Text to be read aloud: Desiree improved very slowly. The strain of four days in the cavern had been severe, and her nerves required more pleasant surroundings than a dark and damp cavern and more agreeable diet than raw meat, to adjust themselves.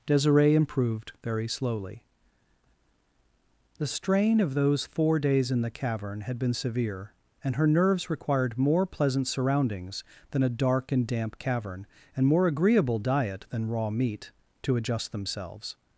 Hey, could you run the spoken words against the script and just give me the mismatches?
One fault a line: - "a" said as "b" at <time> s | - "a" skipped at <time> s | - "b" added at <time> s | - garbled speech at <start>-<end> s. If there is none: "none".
- "those" added at 4.5 s